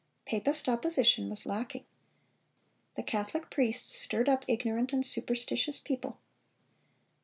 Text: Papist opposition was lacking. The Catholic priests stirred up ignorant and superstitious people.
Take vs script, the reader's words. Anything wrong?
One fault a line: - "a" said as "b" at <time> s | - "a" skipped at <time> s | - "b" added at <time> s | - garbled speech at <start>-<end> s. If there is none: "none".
none